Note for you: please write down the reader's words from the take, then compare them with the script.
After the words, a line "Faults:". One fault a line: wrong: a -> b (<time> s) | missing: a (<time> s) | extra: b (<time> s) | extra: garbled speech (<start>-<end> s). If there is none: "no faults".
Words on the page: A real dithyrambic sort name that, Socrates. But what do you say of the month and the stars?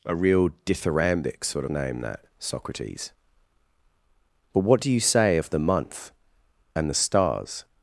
A real dithyrambic sort name that, Socrates. But what do you say of the month and the stars?
Faults:
no faults